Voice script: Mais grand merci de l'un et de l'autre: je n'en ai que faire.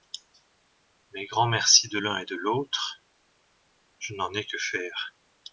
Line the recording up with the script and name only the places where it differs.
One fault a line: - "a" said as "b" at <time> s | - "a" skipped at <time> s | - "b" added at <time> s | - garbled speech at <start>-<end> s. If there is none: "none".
none